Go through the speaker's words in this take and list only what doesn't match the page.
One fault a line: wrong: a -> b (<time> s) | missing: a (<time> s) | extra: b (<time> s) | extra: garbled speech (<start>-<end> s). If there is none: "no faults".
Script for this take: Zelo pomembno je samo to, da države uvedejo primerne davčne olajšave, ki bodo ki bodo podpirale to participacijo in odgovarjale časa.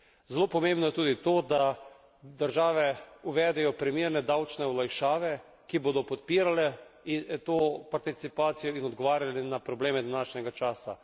wrong: samo -> tudi (0.9 s)
missing: ki bodo (6.0 s)
extra: na probleme današnjega (9.4 s)